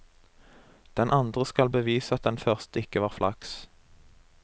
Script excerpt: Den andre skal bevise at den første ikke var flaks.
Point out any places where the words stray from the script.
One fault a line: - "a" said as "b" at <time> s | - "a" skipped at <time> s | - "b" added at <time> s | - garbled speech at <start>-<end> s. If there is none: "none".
none